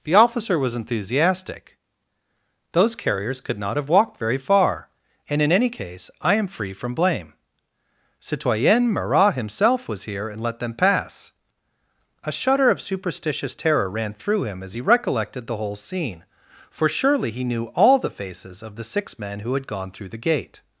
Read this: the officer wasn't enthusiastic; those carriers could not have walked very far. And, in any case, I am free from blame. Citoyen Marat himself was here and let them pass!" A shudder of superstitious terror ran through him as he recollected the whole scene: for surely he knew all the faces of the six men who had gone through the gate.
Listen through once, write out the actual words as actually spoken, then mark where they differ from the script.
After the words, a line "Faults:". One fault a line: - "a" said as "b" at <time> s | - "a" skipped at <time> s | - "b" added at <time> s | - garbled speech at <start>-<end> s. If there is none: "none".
the officer was enthusiastic; those carriers could not have walked very far. And, in any case, I am free from blame. Citoyen Marat himself was here and let them pass!" A shudder of superstitious terror ran through him as he recollected the whole scene: for surely he knew all the faces of the six men who had gone through the gate.
Faults:
- "wasn't" said as "was" at 0.6 s